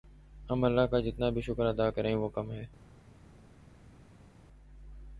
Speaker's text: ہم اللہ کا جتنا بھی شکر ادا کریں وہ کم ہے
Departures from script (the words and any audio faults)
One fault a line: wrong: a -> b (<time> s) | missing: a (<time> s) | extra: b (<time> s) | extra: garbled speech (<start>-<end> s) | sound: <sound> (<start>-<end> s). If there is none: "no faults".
no faults